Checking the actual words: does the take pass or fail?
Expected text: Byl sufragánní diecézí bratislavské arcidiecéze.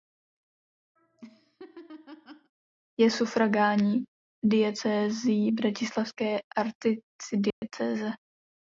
fail